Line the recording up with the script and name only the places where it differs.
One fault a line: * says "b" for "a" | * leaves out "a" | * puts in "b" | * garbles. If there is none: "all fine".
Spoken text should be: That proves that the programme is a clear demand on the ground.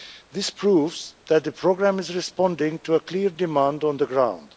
* says "This" for "That"
* puts in "responding to"